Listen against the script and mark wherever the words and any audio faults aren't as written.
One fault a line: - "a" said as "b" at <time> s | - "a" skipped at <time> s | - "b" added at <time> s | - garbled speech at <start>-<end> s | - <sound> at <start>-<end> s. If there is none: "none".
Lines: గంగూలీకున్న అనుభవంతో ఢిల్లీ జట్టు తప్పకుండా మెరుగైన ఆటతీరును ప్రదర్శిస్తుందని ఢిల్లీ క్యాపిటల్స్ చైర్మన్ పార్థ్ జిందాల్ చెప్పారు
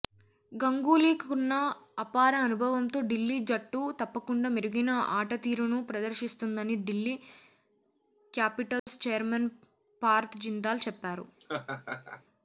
- "అపార" added at 2.0 s
- dropout at 8.8-8.9 s
- laugh at 11.4-12.2 s